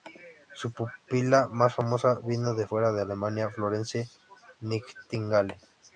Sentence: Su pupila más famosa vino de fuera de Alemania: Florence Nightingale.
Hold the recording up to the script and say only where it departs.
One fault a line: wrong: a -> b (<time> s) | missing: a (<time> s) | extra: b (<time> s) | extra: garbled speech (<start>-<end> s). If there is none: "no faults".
no faults